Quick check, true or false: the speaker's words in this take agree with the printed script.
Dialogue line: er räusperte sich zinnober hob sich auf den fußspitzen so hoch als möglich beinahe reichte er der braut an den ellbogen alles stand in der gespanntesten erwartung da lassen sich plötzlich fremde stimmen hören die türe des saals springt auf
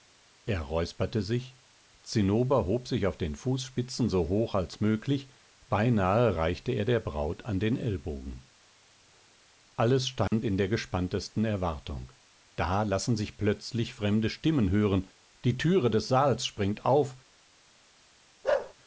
true